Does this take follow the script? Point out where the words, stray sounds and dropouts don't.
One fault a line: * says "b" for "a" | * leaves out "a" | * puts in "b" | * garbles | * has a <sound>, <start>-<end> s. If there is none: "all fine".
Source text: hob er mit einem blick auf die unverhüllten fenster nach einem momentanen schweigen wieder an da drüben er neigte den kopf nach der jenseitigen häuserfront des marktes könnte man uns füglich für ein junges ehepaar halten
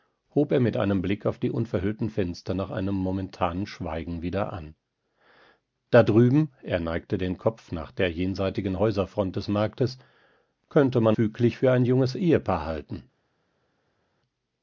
* leaves out "uns"